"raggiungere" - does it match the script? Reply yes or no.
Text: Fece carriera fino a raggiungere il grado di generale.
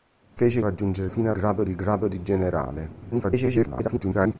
no